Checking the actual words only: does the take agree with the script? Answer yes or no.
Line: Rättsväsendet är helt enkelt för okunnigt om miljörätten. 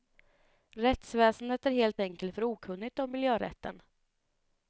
yes